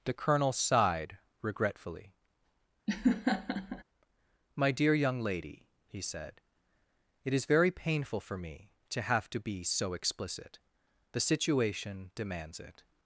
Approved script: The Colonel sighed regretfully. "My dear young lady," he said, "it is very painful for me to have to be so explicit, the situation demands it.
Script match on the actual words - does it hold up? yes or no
yes